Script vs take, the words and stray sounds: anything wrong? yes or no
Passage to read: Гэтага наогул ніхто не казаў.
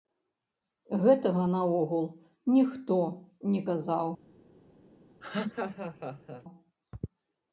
yes